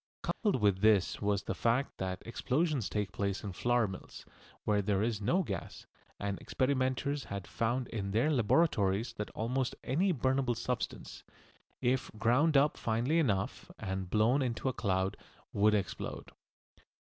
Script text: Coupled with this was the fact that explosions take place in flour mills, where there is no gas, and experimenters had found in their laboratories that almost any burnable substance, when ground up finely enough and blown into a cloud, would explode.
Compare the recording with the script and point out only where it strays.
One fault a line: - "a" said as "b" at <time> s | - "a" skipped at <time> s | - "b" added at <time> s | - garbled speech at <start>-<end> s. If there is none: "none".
- "when" said as "if" at 11.8 s